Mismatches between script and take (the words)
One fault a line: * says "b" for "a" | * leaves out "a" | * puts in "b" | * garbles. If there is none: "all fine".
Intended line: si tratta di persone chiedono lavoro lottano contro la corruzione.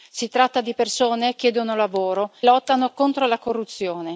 all fine